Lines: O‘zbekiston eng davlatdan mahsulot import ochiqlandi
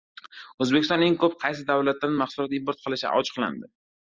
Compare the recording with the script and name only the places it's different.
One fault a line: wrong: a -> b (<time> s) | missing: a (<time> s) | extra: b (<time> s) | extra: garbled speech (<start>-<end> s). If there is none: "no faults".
extra: ko‘p qaysi (1.2 s)
extra: qilishi (2.9 s)